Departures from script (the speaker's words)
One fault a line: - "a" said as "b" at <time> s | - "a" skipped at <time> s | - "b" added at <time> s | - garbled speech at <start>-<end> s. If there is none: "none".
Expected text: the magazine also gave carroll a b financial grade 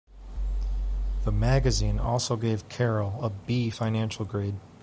none